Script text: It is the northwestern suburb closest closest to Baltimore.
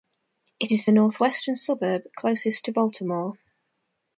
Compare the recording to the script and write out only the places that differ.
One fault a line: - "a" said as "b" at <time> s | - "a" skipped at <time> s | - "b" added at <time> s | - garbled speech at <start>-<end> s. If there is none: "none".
- "closest" skipped at 2.6 s